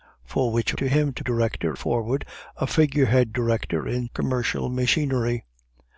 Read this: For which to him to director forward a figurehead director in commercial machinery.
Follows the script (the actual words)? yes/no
yes